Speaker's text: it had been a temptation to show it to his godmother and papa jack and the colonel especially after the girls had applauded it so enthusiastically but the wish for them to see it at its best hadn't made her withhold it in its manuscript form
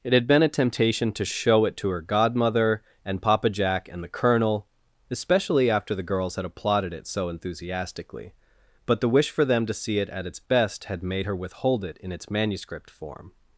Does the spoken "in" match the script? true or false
true